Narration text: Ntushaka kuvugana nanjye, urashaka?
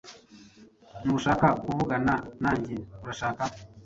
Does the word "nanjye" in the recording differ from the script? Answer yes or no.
no